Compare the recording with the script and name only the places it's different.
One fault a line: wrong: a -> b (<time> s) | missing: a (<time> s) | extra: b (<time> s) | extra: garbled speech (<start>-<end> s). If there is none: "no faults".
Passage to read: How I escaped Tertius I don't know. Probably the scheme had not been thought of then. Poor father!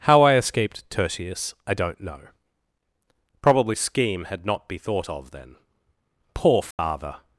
missing: the (3.8 s)
wrong: been -> be (4.7 s)